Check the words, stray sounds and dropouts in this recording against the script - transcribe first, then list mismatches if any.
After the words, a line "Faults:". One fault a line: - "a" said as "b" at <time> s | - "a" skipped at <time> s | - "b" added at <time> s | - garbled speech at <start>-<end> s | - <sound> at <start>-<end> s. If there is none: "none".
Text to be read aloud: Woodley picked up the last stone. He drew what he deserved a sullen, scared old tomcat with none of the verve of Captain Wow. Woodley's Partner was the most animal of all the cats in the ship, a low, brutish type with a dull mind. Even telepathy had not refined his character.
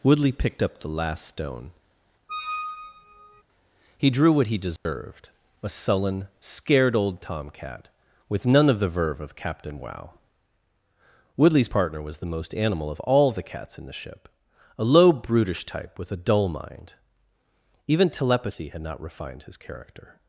Woodley picked up the last stone. He drew what he deserved a sullen, scared old tomcat with none of the verve of Captain Wow. Woodley's Partner was the most animal of all the cats in the ship, a low, brutish type with a dull mind. Even telepathy had not refined his character.
Faults:
- squeak at 2.3-3.4 s
- dropout at 4.8-4.9 s